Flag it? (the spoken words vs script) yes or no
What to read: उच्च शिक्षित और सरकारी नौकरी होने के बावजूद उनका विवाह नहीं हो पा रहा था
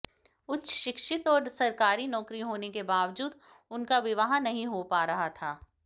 no